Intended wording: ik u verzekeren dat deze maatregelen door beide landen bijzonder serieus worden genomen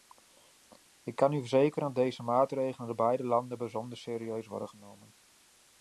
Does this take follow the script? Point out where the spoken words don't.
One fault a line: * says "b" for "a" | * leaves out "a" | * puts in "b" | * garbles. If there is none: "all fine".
* puts in "kan"